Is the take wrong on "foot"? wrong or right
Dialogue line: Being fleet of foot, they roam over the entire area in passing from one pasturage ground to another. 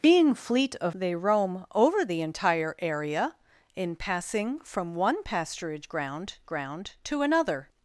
wrong